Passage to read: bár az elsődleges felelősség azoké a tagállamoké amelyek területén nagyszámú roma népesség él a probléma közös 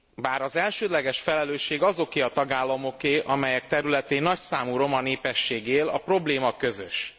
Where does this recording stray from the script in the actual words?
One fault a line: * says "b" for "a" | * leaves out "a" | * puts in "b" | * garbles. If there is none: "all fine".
all fine